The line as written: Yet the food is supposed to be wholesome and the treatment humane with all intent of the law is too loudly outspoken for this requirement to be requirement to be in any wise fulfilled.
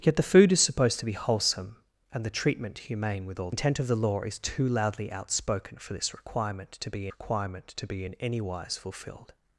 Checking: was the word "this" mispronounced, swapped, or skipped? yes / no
no